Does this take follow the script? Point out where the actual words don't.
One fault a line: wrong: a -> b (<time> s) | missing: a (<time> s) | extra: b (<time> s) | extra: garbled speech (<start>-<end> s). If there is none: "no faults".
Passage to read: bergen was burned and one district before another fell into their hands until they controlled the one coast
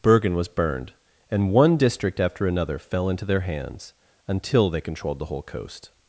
wrong: before -> after (2.2 s)
wrong: one -> whole (5.3 s)